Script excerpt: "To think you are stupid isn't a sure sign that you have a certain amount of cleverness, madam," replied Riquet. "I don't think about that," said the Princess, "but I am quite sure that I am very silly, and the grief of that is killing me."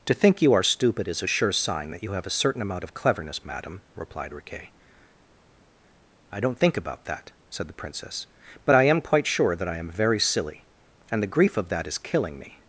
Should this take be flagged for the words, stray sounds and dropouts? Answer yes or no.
yes